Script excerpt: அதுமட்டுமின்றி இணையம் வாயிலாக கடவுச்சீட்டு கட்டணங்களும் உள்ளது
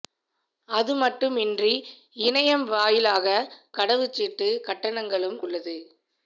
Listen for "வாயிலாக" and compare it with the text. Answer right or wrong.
right